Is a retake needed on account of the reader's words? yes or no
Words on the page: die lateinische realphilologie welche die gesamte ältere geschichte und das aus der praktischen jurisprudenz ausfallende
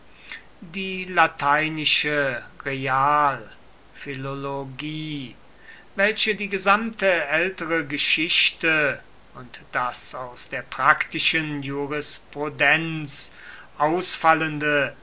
no